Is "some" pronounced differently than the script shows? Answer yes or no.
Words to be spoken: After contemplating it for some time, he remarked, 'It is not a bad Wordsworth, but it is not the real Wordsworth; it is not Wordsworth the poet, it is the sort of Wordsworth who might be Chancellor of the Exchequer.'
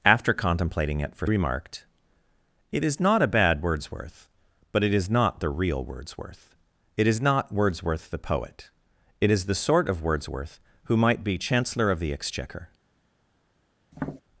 yes